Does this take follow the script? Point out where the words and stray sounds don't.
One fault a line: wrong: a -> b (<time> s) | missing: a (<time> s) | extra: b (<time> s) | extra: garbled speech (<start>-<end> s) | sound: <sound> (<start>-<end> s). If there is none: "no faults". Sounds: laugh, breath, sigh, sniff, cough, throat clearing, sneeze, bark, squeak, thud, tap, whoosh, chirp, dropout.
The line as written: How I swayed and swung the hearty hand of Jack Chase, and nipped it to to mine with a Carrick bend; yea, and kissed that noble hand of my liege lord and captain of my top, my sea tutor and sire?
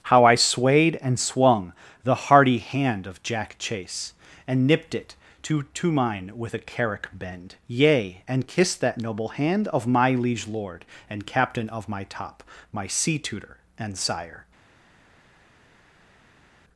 no faults